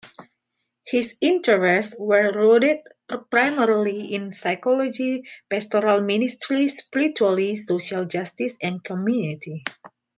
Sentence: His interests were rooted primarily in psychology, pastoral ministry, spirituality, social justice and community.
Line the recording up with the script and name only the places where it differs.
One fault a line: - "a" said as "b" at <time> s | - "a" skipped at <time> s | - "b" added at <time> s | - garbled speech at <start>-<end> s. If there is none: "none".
none